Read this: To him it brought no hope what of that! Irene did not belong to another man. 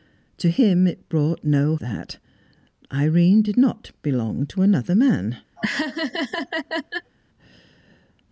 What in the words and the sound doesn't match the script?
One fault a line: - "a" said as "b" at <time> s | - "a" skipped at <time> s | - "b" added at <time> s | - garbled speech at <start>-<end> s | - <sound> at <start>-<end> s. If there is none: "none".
- "hope what of" skipped at 1.8 s
- laugh at 5.6-7.1 s